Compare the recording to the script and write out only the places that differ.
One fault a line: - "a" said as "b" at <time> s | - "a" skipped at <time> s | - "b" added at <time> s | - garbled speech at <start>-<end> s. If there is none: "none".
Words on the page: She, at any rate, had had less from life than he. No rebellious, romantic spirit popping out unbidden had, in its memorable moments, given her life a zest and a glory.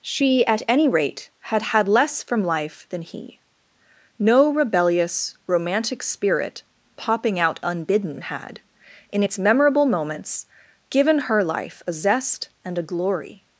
none